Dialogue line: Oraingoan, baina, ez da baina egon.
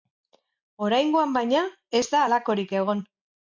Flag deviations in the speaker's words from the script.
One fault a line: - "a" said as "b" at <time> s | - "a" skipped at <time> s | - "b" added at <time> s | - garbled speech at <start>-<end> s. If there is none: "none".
- "baina" said as "halakorik" at 2.2 s